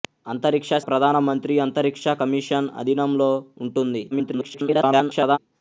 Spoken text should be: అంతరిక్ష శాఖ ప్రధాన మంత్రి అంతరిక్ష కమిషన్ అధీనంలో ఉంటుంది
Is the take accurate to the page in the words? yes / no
no